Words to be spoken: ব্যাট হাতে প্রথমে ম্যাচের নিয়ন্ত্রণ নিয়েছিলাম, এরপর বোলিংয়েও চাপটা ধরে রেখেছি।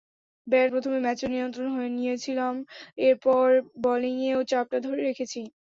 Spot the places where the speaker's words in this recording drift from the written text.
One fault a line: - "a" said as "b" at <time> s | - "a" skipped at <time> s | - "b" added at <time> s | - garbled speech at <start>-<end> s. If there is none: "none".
- "হাতে" skipped at 0.7 s